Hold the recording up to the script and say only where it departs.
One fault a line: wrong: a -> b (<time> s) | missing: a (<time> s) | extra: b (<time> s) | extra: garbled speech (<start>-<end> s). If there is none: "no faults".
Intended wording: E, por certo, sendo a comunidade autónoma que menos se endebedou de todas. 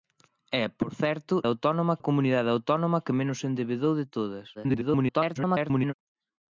wrong: sendo -> autónoma (1.5 s)
extra: garbled speech (4.5-5.9 s)